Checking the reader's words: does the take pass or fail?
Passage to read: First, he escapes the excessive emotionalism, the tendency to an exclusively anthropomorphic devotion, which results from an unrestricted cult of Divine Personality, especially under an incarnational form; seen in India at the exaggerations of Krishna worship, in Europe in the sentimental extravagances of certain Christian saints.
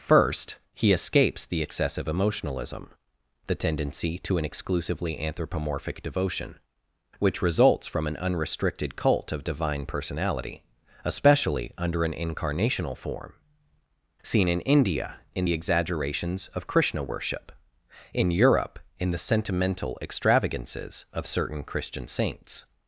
fail